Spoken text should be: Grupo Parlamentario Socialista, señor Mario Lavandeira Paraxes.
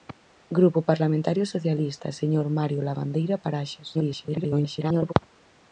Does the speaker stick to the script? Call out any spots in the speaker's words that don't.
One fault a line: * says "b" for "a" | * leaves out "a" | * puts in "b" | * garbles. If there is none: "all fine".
* garbles